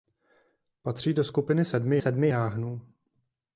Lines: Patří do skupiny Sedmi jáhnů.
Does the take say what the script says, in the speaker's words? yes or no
no